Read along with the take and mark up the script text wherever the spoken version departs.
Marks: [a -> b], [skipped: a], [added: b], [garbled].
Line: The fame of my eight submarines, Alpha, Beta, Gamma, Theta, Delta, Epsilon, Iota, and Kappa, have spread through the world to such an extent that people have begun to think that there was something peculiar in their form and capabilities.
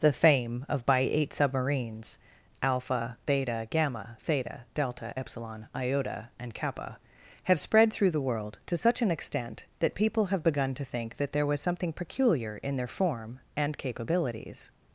The fame of [my -> by] eight submarines, Alpha, Beta, Gamma, Theta, Delta, Epsilon, Iota, and Kappa, have spread through the world to such an extent that people have begun to think that there was something peculiar in their form and capabilities.